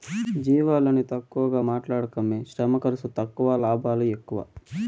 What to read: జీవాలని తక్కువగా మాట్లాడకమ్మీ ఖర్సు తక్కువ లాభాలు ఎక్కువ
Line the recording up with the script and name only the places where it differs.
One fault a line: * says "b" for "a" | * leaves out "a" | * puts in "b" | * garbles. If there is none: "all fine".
* puts in "శ్రమ"